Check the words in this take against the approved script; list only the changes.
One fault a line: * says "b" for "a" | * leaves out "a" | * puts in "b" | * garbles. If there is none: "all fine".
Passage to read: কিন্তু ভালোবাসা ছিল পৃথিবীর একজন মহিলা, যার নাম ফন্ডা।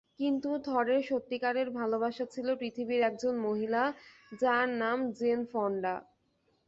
* puts in "থরের সত্যিকারের"
* puts in "জেন"